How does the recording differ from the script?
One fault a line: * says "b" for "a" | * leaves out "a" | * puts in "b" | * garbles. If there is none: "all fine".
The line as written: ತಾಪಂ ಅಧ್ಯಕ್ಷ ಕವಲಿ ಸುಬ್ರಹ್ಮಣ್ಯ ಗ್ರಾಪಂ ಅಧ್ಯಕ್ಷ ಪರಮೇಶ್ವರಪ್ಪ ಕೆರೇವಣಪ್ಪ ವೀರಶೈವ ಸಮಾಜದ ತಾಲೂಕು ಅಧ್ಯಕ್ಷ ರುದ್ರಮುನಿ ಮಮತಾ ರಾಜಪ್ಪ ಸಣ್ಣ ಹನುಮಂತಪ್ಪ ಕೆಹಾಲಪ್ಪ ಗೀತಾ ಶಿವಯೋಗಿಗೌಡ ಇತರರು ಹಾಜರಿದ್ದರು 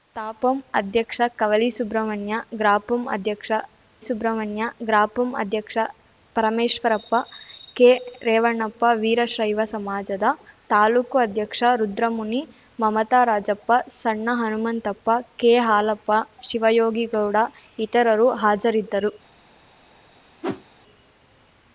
* puts in "ಸುಬ್ರಹ್ಮಣ್ಯ ಗ್ರಾಪಂ ಅಧ್ಯಕ್ಷ"
* leaves out "ಗೀತಾ"